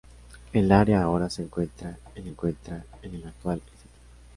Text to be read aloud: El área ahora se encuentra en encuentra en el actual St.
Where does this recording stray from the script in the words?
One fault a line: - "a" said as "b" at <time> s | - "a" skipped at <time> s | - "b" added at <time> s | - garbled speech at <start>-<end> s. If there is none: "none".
none